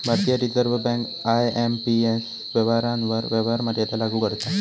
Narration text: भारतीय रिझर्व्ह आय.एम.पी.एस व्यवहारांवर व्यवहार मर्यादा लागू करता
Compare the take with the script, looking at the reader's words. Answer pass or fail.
fail